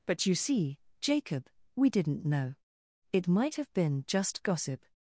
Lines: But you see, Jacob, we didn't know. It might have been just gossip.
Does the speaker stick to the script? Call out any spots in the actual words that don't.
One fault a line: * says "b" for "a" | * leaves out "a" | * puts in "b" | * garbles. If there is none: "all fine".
all fine